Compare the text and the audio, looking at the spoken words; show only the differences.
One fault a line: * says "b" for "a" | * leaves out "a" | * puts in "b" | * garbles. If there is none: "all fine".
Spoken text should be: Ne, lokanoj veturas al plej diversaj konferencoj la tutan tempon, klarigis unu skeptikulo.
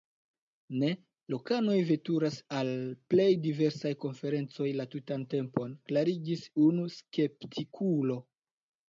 all fine